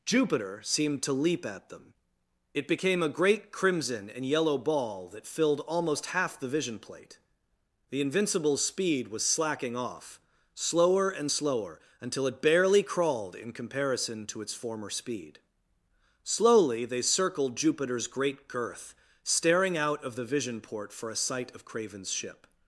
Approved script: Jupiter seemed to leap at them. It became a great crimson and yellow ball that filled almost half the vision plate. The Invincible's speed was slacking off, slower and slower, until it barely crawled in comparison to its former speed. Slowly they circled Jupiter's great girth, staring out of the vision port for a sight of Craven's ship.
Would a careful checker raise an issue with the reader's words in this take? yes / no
no